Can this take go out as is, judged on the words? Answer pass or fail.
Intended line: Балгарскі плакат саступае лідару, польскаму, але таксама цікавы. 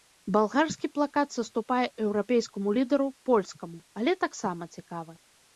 fail